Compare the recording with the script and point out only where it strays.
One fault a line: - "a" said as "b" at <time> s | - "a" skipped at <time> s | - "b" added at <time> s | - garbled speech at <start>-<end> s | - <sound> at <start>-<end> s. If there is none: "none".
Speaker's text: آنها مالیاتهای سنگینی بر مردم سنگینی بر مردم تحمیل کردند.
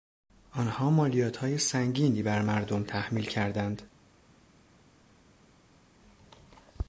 - "سنگینی بر مردم" skipped at 2.8 s